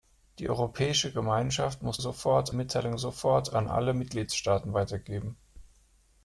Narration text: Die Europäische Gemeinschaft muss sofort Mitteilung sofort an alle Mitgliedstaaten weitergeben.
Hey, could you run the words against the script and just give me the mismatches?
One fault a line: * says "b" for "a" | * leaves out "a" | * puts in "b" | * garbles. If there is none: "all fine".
all fine